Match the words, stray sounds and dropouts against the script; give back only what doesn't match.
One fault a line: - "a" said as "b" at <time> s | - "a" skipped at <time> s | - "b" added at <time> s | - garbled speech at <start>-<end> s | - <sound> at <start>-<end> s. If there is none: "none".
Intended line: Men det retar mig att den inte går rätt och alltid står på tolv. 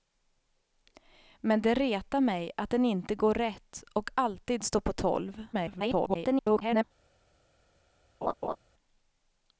- garbled speech at 5.5-6.8 s
- laugh at 8.2-8.6 s